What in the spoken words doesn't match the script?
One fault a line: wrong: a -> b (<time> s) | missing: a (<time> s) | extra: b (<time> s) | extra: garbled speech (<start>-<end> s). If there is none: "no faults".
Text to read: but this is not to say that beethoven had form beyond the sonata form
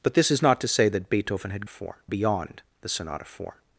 no faults